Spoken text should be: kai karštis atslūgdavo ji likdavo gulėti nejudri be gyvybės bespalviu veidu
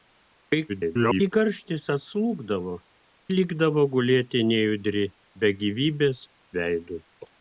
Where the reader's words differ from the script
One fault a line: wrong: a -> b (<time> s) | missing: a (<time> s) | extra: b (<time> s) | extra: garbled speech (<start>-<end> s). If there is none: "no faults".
extra: garbled speech (0.7-1.3 s)
missing: ji (2.7 s)
missing: bespalviu (6.2 s)